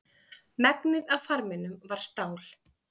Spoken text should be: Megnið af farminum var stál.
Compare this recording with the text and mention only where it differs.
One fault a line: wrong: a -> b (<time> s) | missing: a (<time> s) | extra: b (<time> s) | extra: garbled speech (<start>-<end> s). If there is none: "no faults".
no faults